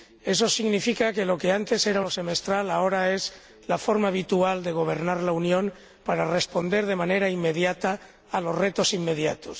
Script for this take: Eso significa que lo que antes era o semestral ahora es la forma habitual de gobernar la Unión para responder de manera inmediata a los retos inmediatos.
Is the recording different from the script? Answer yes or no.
no